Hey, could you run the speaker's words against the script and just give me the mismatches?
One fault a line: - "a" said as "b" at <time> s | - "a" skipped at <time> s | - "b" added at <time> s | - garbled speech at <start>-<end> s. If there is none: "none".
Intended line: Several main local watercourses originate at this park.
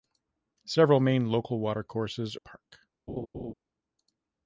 - "originate at this" skipped at 2.4 s